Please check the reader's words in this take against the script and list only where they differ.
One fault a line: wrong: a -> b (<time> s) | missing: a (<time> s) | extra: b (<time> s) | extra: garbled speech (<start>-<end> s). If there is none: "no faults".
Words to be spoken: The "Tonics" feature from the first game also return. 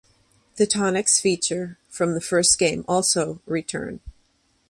no faults